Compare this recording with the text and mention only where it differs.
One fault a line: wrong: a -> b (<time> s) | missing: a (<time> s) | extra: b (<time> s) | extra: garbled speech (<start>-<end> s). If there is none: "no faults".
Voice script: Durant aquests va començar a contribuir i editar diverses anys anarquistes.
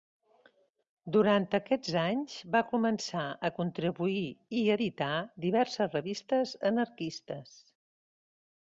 extra: anys (2.0 s)
wrong: anys -> revistes (6.0 s)